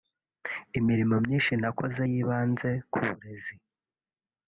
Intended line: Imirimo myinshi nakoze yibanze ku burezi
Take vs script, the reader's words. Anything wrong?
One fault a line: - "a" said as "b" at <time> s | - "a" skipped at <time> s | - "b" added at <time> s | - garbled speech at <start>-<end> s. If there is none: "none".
none